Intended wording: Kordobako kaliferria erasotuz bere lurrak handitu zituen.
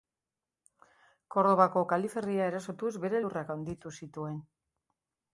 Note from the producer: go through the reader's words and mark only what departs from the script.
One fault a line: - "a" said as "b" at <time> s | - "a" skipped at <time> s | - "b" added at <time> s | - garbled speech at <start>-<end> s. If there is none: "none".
none